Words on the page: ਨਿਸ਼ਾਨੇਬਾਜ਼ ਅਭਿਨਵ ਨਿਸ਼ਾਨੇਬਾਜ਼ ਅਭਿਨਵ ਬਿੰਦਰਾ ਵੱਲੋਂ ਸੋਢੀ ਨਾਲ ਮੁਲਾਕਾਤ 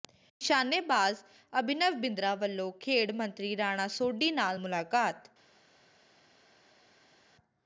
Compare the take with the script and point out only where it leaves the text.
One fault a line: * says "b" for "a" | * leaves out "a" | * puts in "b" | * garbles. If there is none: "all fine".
* says "ਬਿੰਦਰਾ ਵੱਲੋਂ ਖੇਡ ਮੰਤਰੀ ਰਾਣਾ" for "ਨਿਸ਼ਾਨੇਬਾਜ਼ ਅਭਿਨਵ ਬਿੰਦਰਾ ਵੱਲੋਂ"